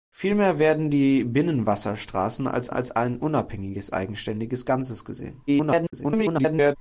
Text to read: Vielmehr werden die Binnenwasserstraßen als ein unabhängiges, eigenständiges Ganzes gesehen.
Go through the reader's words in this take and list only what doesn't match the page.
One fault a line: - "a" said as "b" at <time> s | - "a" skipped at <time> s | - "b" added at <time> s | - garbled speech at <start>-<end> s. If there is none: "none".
- "als" added at 2.7 s
- garbled speech at 5.5-6.8 s